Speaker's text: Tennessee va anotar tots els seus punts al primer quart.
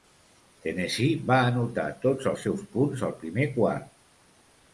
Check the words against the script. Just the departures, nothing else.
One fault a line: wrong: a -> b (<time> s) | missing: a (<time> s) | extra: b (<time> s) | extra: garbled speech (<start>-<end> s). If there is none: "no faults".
no faults